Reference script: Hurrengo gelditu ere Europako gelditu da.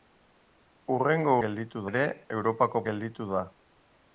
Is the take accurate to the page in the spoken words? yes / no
yes